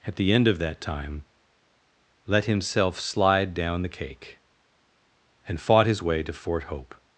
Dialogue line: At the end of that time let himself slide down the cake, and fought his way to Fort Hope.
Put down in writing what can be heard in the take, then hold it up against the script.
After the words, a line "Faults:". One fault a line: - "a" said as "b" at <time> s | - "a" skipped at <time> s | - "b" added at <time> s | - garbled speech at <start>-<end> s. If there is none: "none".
At the end of that time let himself slide down the cake, and fought his way to Fort Hope.
Faults:
none